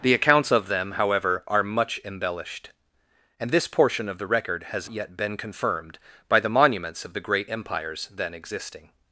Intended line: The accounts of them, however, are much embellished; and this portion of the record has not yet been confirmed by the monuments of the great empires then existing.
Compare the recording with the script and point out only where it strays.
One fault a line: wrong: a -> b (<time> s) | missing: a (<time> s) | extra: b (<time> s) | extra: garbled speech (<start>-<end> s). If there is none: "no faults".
missing: not (4.9 s)